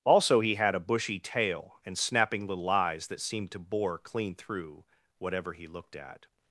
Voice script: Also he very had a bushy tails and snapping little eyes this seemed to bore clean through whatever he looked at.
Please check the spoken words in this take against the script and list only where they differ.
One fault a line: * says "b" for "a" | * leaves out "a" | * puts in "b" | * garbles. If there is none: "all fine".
* leaves out "very"
* says "tail" for "tails"
* says "that" for "this"